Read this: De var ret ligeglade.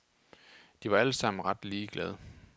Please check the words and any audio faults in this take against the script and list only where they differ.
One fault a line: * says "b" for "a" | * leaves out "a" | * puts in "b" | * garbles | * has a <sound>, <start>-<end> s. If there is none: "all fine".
* puts in "alle sammen"